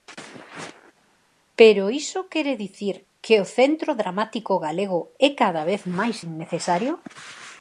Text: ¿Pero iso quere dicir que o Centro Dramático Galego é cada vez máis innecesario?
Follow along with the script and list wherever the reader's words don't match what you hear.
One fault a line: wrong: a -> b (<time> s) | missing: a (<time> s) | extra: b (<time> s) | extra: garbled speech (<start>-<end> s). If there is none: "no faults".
no faults